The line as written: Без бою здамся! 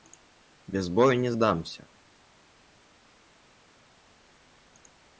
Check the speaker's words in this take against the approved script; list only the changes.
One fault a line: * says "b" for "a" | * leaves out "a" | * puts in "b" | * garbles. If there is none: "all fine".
* puts in "не"